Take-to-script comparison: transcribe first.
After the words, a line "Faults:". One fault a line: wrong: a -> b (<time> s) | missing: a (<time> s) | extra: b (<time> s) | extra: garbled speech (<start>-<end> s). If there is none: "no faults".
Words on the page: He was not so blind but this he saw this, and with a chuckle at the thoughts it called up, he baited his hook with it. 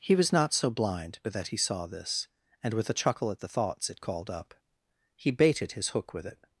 He was not so blind but that he saw this, and with a chuckle at the thoughts it called up, he baited his hook with it.
Faults:
wrong: this -> that (1.3 s)